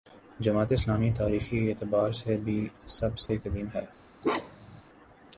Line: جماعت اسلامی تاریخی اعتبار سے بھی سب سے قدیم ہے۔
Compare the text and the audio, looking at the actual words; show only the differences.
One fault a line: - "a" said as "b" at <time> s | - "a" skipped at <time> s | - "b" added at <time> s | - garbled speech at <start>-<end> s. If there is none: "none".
none